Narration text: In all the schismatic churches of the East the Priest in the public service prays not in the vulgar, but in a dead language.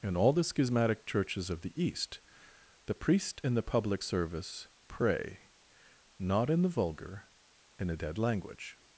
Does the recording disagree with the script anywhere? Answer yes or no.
yes